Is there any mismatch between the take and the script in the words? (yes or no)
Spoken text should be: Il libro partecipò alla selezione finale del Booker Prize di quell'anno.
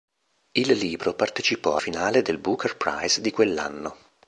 yes